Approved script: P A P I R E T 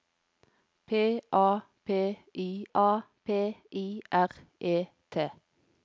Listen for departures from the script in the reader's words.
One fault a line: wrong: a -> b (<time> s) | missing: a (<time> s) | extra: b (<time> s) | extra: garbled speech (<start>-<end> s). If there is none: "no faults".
extra: A P I (2.7 s)